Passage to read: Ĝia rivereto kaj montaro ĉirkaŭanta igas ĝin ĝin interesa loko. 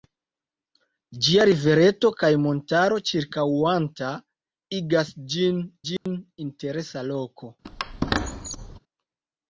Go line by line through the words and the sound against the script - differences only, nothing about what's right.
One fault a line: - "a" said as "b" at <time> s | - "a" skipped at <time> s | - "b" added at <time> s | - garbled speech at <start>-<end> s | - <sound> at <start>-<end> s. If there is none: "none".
- dropout at 6.0-6.1 s
- squeak at 7.6-8.8 s